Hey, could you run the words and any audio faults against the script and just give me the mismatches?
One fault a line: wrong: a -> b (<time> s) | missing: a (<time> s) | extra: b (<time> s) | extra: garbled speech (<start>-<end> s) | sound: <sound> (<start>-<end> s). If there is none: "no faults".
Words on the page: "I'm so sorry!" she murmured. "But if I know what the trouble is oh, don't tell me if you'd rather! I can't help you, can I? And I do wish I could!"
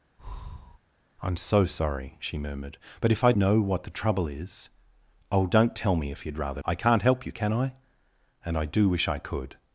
sound: breath (0.2-0.8 s)